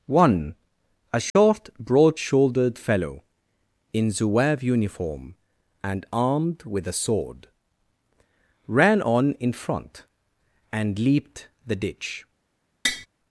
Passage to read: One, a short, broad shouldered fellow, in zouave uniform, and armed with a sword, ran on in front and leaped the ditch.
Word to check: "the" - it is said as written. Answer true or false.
true